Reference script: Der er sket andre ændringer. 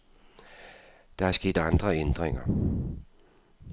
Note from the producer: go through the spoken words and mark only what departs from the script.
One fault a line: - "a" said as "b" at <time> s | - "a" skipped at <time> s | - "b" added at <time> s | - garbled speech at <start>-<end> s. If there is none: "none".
none